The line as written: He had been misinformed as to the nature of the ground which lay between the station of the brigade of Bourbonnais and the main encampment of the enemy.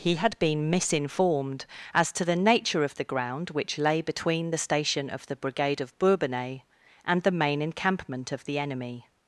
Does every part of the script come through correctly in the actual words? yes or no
yes